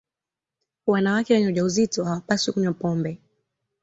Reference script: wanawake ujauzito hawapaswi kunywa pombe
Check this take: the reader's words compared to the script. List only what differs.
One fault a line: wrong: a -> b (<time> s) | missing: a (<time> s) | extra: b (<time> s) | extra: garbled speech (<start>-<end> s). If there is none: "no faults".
extra: wenye (1.3 s)